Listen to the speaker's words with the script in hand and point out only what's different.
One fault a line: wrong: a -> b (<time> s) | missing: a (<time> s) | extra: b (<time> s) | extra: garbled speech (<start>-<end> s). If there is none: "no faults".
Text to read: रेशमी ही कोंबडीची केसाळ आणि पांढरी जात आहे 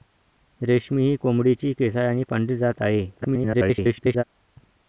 extra: garbled speech (3.2-4.2 s)